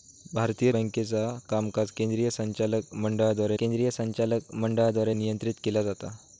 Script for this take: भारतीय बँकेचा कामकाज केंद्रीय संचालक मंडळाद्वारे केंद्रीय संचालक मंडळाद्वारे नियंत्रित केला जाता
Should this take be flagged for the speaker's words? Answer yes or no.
no